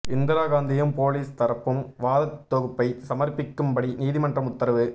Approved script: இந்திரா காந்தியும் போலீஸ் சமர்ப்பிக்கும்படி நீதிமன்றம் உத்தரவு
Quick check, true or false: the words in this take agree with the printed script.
false